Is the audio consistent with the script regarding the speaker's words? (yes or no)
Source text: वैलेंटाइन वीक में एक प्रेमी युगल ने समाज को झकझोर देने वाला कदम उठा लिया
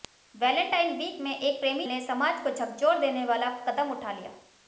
no